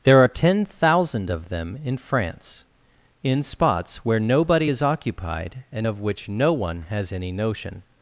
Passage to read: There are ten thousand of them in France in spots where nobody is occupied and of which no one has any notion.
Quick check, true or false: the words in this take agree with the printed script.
true